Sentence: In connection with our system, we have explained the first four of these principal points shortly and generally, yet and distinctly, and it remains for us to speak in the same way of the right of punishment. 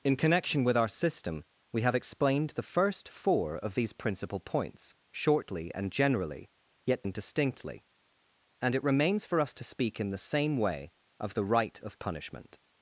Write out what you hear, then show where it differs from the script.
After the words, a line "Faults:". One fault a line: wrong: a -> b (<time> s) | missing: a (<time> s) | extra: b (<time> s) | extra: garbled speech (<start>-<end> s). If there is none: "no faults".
In connection with our system, we have explained the first four of these principal points shortly and generally, yet and distinctly, and it remains for us to speak in the same way of the right of punishment.
Faults:
no faults